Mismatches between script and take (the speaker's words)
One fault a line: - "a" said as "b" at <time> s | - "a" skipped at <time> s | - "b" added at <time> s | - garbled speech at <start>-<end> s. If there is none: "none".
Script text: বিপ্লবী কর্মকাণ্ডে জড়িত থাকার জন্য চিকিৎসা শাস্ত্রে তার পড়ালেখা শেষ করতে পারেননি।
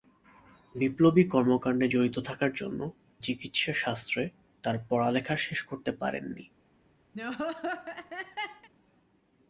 none